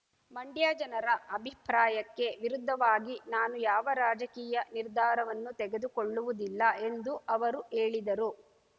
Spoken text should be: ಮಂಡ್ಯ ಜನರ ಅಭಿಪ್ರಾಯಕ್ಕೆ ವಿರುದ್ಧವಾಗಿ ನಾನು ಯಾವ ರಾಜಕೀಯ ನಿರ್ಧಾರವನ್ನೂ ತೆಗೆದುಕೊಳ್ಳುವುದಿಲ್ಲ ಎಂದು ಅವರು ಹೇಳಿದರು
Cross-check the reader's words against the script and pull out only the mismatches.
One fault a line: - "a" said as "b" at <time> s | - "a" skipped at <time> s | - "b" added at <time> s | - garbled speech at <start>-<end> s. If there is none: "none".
none